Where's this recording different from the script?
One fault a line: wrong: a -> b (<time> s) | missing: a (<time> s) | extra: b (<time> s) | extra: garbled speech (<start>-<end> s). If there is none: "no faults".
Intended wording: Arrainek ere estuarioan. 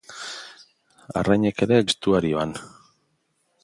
no faults